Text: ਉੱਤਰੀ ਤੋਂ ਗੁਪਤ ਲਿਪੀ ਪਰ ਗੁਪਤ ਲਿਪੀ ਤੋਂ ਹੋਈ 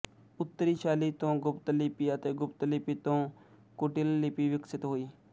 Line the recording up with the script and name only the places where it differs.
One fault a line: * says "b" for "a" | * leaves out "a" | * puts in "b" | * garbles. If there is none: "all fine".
* puts in "ਸ਼ੈਲੀ"
* says "ਅਤੇ" for "ਪਰ"
* puts in "ਕੁਟਿਲ ਲਿਪੀ ਵਿਕਸਿਤ"